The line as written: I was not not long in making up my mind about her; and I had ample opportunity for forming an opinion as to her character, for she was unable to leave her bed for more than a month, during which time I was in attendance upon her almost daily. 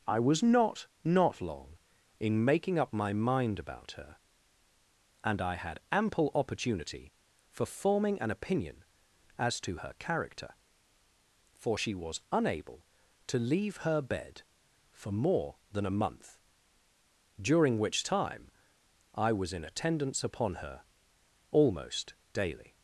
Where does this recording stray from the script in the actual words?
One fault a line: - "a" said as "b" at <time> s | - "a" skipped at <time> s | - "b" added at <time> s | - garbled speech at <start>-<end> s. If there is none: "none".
none